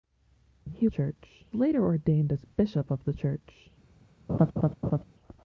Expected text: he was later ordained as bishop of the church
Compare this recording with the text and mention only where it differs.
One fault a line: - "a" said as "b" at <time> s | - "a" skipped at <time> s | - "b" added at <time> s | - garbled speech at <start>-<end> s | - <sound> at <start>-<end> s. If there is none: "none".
- "was" said as "church" at 0.9 s
- laugh at 4.3-5.0 s